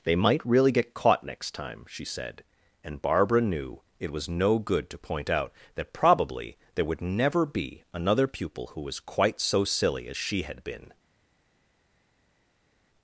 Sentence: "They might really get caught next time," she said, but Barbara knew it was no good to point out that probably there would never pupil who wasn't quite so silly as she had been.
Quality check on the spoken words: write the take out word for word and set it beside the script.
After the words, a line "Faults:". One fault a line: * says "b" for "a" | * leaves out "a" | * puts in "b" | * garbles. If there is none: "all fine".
"They might really get caught next time," she said, and Barbara knew it was no good to point out that probably there would never be another pupil who was quite so silly as she had been.
Faults:
* says "and" for "but"
* puts in "be another"
* says "was" for "wasn't"